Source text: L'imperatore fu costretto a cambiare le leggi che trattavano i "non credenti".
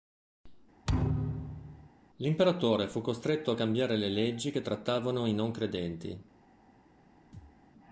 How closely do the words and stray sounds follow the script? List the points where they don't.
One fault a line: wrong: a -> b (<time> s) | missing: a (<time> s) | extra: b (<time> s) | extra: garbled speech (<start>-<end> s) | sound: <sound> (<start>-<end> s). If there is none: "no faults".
sound: thud (0.9-1.9 s)
sound: thud (7.3-7.6 s)